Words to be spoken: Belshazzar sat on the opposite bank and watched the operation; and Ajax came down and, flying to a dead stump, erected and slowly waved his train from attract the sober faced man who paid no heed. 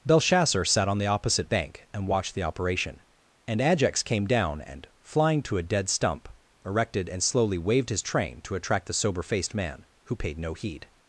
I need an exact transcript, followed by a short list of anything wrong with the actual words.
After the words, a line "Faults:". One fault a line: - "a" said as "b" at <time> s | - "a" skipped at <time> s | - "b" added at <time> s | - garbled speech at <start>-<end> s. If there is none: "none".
Belshazzar sat on the opposite bank and watched the operation; and Ajax came down and, flying to a dead stump, erected and slowly waved his train to attract the sober faced man who paid no heed.
Faults:
- "from" said as "to" at 8.4 s